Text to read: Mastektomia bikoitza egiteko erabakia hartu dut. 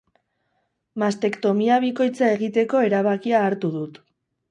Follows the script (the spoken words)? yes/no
yes